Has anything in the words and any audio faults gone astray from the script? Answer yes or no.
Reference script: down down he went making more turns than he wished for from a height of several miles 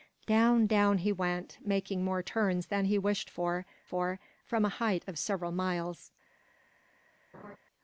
yes